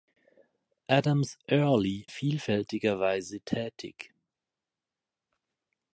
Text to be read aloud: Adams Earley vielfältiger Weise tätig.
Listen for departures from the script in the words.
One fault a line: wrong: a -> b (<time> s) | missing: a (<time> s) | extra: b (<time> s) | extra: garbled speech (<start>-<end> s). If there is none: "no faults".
no faults